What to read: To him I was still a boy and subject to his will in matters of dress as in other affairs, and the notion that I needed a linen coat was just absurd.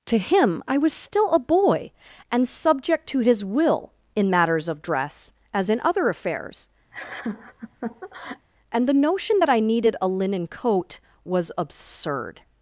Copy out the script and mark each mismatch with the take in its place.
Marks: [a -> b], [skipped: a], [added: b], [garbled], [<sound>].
To him I was still a boy and subject to his will in matters of dress as in other affairs, [laugh] and the notion that I needed a linen coat was [skipped: just] absurd.